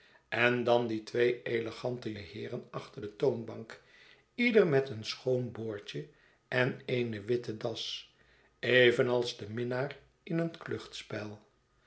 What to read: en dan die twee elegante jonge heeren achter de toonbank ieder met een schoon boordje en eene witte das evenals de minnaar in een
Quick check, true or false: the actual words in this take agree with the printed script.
false